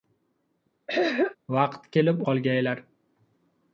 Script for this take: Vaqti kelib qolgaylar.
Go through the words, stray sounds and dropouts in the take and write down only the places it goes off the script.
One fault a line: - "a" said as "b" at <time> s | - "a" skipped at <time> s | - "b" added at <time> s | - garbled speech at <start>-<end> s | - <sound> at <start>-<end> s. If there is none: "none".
- throat clearing at 0.9-1.4 s